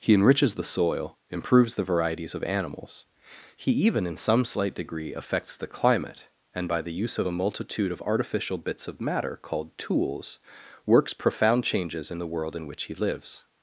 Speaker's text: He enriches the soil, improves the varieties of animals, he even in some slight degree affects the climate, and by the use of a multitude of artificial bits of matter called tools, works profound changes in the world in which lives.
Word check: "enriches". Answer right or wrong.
right